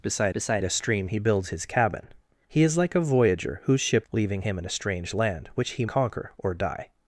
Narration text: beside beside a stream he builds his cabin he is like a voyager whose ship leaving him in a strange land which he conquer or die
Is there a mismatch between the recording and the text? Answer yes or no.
no